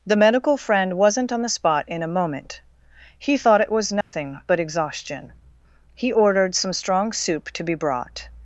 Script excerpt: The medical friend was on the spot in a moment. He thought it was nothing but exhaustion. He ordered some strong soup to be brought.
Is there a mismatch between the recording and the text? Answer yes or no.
yes